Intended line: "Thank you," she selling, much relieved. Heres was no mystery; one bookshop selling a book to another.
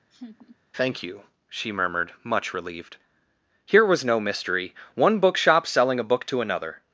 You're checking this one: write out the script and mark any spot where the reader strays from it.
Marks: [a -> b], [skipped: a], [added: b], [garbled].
"Thank you," she [selling, -> murmured] much relieved. [Heres -> Here] was no mystery; one bookshop selling a book to another.